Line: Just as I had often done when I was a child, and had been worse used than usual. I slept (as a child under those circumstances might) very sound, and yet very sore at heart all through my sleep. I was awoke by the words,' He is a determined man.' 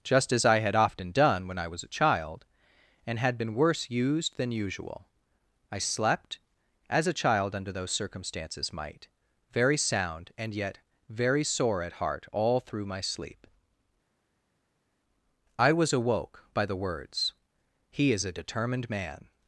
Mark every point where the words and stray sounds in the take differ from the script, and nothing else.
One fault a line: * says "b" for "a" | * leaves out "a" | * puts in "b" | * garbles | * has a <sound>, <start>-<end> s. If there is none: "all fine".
all fine